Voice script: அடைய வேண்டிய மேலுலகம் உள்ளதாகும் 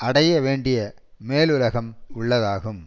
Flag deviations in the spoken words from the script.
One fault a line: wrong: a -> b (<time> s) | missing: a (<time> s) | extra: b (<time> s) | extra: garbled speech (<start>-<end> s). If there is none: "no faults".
no faults